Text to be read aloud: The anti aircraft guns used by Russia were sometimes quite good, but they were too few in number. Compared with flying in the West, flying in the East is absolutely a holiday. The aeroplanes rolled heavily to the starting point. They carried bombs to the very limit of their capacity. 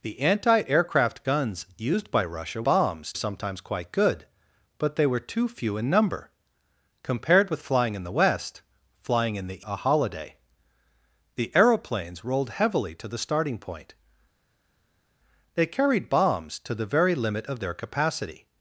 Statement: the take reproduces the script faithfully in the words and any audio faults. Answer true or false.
false